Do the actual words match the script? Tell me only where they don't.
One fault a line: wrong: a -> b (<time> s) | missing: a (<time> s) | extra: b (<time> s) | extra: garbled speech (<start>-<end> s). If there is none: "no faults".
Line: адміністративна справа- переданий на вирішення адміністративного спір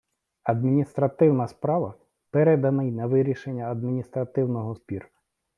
no faults